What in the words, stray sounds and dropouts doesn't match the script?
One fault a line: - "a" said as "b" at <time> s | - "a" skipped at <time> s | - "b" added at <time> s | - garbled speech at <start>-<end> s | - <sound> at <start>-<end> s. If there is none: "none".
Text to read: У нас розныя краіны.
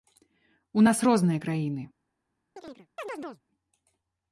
- chirp at 2.6-3.4 s